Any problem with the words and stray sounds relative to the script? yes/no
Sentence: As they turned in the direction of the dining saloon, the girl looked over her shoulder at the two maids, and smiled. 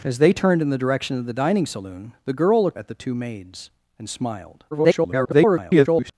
yes